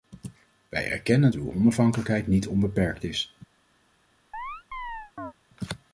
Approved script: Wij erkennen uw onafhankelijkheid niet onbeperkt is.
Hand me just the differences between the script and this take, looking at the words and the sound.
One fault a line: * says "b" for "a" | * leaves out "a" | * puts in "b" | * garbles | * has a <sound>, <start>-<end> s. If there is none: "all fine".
* has a chirp, 4.3-5.3 s